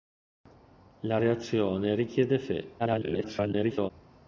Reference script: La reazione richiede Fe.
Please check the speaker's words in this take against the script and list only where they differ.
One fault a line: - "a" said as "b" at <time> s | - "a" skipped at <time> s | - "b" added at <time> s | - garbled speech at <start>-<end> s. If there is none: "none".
- garbled speech at 2.8-3.9 s